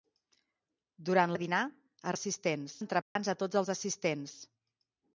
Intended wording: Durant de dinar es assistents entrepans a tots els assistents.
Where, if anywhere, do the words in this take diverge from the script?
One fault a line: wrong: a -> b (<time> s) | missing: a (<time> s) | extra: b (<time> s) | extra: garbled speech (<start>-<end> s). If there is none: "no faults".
no faults